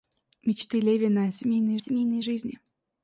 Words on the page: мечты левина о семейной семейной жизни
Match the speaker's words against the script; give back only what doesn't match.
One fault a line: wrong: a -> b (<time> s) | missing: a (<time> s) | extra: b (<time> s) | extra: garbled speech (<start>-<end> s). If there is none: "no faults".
no faults